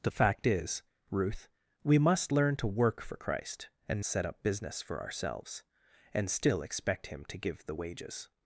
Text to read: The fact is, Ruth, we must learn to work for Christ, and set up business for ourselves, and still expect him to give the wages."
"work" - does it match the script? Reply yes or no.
yes